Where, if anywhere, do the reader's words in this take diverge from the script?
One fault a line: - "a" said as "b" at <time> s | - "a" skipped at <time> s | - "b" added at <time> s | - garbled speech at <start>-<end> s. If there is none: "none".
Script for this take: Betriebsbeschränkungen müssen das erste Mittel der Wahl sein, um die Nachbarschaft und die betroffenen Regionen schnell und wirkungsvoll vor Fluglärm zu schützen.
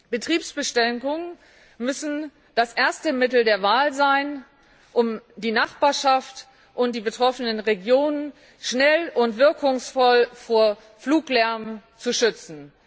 none